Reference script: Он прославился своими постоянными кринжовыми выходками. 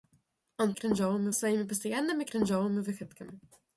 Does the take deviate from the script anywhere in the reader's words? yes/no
yes